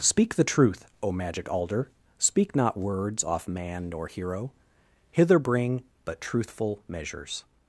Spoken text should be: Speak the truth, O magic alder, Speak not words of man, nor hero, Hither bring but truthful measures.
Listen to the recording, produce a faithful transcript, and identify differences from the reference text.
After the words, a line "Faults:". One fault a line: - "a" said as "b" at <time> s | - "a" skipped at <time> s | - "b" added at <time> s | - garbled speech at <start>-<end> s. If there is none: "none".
Speak the truth, O magic alder, Speak not words off man, nor hero, Hither bring but truthful measures.
Faults:
- "of" said as "off" at 3.2 s